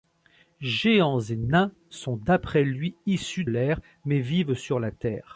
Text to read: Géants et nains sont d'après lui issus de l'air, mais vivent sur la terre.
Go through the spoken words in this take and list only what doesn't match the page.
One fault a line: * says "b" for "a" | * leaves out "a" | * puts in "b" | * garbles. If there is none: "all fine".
* leaves out "de"